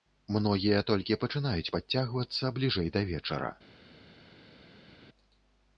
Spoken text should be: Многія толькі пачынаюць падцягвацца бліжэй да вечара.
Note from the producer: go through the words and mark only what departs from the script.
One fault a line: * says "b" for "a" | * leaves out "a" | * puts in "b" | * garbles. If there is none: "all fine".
all fine